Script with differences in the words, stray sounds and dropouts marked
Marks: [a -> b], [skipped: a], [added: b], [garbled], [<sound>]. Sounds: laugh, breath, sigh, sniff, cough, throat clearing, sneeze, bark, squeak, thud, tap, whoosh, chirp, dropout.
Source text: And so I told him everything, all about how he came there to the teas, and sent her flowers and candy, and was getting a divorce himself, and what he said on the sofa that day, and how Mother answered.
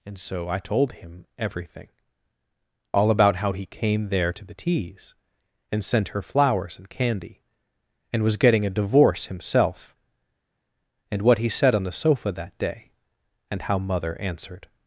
And so I told him everything, all about how he came there to the teas, and sent her flowers and candy, and was getting a divorce himself, and what he said on the sofa that day, and how Mother answered.